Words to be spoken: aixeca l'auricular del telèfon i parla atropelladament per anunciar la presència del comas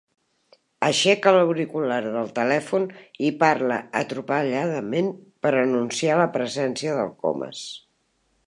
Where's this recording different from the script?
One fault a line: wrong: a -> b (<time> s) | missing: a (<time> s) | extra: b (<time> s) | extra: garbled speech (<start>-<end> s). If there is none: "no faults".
no faults